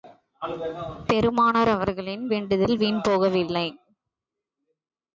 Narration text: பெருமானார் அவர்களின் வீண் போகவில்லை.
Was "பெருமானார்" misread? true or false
false